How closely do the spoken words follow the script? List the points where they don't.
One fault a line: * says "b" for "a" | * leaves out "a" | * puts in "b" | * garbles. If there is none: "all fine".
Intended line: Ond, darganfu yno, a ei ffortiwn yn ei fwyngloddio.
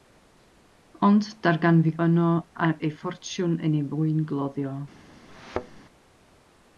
all fine